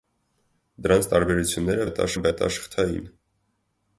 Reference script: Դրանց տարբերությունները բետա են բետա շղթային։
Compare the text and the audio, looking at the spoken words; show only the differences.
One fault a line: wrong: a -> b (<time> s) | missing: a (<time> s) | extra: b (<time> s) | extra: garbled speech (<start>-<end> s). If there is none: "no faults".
no faults